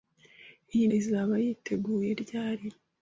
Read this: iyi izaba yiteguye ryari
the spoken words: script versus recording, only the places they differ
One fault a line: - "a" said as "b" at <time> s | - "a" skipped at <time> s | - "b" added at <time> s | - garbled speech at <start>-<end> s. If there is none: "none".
none